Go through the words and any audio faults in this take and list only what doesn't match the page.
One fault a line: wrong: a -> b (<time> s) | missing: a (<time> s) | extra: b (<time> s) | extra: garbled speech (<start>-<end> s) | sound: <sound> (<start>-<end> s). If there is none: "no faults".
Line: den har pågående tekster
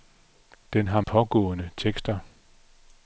no faults